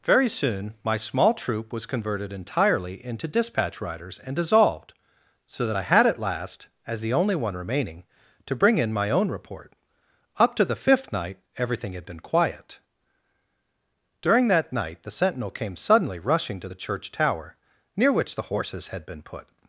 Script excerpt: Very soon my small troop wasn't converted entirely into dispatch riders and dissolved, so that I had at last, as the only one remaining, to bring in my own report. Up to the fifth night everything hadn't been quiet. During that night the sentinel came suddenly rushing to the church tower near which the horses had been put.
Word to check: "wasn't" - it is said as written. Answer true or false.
false